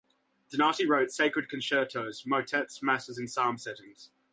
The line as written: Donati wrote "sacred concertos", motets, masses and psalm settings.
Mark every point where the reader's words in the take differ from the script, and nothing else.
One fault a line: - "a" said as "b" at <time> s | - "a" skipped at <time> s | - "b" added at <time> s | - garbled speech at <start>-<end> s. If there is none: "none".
none